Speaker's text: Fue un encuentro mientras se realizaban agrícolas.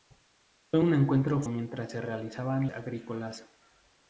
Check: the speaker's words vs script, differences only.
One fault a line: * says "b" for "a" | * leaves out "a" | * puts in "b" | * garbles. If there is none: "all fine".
all fine